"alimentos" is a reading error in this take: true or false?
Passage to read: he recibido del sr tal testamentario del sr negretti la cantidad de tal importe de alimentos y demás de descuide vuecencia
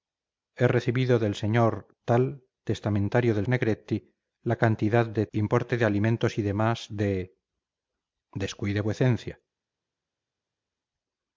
false